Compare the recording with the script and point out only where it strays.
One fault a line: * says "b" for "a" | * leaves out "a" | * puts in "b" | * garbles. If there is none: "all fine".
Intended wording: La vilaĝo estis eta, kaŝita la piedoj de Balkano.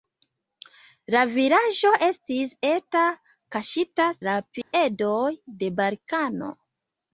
all fine